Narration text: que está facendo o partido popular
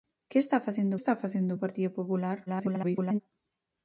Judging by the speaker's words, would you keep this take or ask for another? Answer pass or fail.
fail